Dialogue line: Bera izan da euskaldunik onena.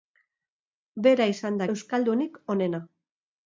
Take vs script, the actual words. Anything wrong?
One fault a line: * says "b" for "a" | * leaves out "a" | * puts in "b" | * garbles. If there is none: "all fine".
all fine